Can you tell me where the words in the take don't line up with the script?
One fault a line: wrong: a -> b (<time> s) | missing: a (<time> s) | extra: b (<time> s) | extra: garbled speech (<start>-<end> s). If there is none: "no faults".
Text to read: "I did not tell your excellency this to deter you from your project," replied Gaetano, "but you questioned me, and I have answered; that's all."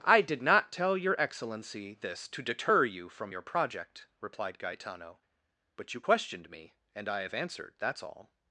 no faults